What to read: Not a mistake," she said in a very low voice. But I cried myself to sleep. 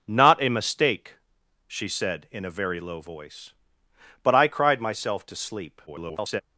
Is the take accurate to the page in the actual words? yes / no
no